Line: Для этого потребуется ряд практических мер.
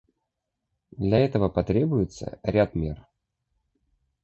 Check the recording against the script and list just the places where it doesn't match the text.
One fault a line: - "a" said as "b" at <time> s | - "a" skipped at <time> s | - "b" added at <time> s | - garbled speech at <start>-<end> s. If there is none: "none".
- "практических" skipped at 2.7 s